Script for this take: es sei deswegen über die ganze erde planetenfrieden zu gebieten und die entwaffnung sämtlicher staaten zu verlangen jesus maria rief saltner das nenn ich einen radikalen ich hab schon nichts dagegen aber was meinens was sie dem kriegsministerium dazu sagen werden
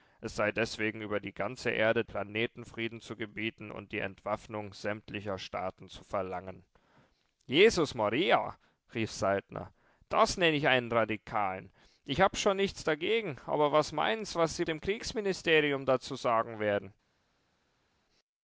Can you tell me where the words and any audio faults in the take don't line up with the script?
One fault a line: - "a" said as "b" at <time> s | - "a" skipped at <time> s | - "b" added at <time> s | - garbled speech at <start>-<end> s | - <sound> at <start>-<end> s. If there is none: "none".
none